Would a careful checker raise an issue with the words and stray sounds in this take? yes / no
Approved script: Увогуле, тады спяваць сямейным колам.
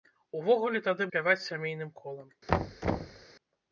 yes